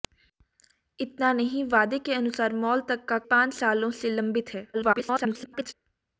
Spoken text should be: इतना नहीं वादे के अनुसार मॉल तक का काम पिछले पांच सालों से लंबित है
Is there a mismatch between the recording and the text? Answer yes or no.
yes